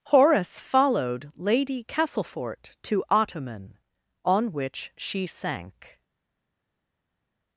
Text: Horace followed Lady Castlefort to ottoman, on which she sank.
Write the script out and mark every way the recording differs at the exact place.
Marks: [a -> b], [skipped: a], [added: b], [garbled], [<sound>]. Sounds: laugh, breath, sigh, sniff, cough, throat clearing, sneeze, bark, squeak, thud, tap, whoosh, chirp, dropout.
Horace followed Lady Castlefort to ottoman, on which she sank.